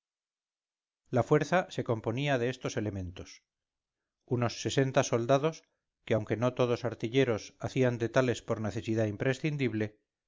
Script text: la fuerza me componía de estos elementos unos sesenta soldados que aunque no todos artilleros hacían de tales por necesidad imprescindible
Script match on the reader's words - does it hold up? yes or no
no